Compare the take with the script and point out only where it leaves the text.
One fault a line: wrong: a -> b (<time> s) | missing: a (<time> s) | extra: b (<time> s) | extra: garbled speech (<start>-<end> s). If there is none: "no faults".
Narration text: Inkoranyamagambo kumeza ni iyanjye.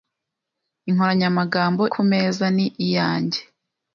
no faults